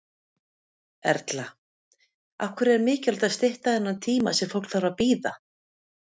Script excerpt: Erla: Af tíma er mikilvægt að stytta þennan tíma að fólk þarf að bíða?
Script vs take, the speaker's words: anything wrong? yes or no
yes